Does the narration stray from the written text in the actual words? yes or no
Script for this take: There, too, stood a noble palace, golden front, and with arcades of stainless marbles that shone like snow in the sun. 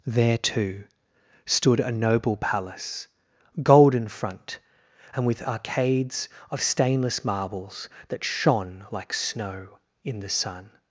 no